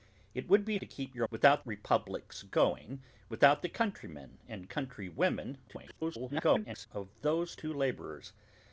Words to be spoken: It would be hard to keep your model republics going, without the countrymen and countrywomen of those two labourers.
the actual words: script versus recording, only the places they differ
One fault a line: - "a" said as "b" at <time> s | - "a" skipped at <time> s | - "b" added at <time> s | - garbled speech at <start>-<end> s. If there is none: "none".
- "hard" skipped at 0.8 s
- "model" said as "without" at 1.3 s
- garbled speech at 5.7-6.9 s